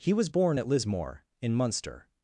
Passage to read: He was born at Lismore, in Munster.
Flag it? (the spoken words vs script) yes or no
no